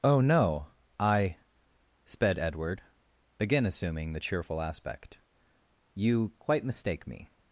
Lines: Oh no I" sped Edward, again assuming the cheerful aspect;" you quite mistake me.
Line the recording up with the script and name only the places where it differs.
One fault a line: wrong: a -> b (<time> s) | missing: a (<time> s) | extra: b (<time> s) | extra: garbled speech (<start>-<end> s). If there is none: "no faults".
no faults